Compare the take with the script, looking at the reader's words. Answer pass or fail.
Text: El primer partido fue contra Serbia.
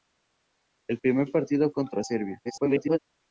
fail